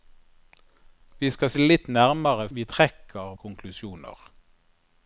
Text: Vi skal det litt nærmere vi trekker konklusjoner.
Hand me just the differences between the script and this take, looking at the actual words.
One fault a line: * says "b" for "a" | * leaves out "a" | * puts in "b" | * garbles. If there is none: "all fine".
all fine